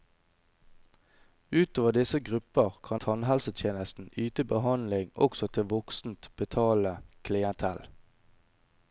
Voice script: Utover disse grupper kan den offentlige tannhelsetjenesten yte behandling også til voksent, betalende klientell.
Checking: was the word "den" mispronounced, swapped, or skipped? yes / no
yes